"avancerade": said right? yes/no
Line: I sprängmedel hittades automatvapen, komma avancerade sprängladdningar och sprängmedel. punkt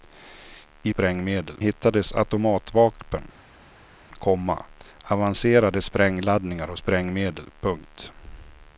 yes